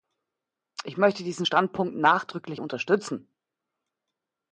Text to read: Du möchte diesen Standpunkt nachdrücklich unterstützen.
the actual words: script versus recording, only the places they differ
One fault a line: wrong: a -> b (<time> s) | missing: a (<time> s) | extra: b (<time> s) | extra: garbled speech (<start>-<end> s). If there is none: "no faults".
wrong: Du -> Ich (0.8 s)